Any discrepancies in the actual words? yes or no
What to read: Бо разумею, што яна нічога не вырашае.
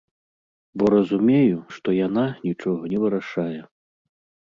no